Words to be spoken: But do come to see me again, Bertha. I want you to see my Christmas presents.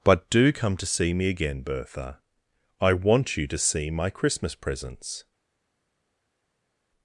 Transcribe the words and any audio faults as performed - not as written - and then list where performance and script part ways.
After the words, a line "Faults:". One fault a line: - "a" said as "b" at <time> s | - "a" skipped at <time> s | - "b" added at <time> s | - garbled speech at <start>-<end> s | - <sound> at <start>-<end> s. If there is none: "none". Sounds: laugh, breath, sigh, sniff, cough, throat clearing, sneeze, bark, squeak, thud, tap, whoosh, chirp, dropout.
But do come to see me again, Bertha. I want you to see my Christmas presents.
Faults:
none